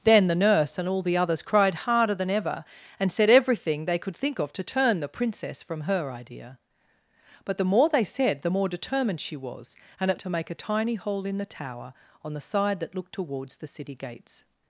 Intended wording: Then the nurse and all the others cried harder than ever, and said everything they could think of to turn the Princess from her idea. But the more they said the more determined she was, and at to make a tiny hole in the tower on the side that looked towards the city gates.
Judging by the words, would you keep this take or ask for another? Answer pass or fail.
pass